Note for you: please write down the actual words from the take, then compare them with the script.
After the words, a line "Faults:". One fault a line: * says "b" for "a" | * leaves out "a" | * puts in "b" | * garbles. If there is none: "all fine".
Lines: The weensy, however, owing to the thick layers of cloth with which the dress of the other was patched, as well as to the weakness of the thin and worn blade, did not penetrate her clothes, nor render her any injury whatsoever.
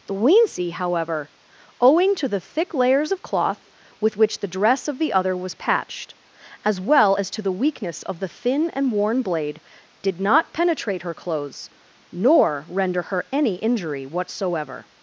The weensy, however, owing to the thick layers of cloth with which the dress of the other was patched, as well as to the weakness of the thin and worn blade, did not penetrate her clothes, nor render her any injury whatsoever.
Faults:
all fine